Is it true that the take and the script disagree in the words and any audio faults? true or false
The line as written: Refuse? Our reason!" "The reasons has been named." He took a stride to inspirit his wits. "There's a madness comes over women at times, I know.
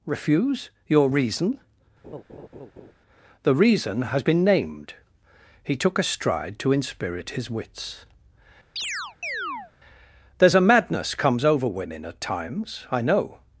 true